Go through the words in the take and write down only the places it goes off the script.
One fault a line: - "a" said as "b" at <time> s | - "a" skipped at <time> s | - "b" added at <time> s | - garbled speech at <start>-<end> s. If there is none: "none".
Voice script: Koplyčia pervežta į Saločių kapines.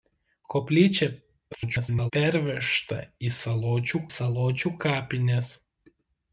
- garbled speech at 1.5-2.1 s
- "Saločių" added at 4.1 s